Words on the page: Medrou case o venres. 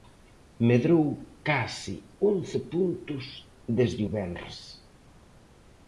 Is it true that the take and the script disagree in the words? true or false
true